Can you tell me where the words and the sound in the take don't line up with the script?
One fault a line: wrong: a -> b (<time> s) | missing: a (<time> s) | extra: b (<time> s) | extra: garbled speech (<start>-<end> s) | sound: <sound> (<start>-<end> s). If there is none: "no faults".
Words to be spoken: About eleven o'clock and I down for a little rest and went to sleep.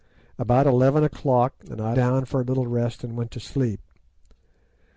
no faults